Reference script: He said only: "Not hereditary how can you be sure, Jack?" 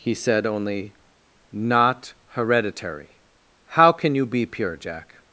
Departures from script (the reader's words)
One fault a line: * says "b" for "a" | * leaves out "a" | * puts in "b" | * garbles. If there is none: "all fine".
* says "pure" for "sure"